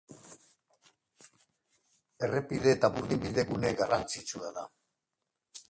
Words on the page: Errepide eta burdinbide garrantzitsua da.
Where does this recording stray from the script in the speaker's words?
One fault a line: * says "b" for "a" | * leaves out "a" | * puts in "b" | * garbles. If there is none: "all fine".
* puts in "gune"